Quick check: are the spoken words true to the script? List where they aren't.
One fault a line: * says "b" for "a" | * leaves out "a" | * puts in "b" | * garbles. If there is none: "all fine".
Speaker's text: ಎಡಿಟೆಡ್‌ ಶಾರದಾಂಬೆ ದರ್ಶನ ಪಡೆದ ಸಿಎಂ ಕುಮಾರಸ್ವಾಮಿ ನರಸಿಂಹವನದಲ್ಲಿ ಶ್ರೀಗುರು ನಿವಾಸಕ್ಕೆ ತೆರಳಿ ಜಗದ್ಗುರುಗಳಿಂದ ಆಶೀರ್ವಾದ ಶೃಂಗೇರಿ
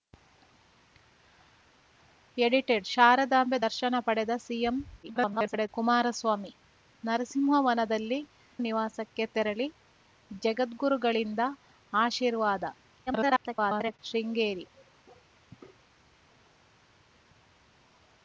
* garbles
* leaves out "ಶ್ರೀಗುರು"
* garbles